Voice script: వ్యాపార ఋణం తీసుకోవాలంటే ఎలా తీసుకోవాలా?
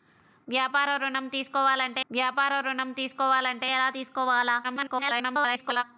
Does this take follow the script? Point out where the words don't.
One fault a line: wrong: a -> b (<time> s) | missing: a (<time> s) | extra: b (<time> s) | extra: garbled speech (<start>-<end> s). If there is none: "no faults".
extra: వ్యాపార ఋణం తీసుకోవాలంటే (2.1 s)
extra: garbled speech (4.6-5.8 s)